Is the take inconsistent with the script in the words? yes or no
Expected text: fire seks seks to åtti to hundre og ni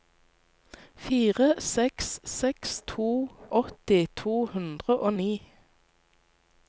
no